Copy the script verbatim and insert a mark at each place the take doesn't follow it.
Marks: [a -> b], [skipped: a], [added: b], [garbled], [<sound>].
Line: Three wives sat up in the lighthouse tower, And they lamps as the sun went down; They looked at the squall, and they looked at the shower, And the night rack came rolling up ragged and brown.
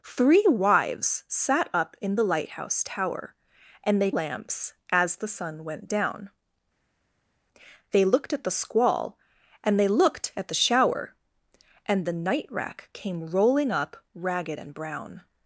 Three wives sat up in the lighthouse tower, And they lamps as the sun went down; They looked at the squall, and they looked at the shower, And the night rack came rolling up ragged and brown.